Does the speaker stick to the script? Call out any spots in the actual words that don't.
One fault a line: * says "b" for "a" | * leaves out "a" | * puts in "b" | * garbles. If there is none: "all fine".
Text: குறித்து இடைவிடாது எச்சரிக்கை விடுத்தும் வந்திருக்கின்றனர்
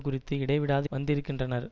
* leaves out "எச்சரிக்கை விடுத்தும்"